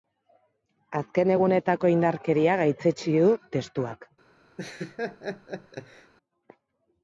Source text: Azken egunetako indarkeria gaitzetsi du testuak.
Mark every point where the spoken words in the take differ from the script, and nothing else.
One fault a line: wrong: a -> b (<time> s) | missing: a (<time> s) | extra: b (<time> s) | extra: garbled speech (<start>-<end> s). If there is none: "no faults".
no faults